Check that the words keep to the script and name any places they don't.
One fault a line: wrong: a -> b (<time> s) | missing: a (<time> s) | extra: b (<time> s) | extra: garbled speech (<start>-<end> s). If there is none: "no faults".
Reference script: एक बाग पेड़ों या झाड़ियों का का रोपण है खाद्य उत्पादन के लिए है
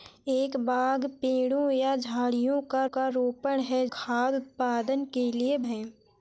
no faults